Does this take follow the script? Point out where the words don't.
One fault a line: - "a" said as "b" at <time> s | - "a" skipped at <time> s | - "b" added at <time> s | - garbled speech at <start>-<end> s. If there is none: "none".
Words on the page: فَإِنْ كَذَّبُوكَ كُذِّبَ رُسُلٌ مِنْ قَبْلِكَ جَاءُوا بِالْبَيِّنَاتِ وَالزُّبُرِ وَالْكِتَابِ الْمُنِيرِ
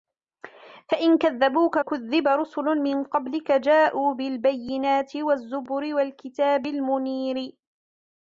none